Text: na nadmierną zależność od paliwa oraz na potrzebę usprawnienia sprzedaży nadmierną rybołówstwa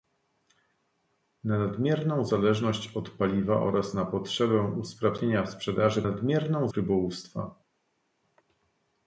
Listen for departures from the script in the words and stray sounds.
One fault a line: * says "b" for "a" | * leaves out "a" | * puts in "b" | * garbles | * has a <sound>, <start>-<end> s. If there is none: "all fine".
all fine